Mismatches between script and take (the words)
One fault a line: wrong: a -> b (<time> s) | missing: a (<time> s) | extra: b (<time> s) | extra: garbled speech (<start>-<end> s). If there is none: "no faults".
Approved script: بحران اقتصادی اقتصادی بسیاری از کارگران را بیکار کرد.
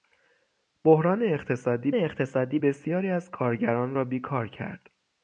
no faults